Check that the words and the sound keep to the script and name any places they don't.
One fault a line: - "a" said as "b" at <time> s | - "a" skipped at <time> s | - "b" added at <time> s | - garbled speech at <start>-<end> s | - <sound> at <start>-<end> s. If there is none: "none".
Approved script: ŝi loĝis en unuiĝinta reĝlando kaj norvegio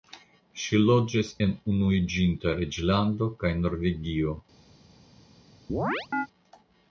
- chirp at 5.7-6.3 s